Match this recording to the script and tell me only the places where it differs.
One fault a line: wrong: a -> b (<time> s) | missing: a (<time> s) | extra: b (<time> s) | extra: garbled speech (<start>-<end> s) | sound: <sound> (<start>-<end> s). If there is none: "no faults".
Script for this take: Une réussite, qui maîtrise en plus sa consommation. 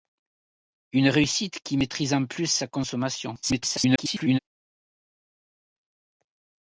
extra: garbled speech (3.4-4.4 s)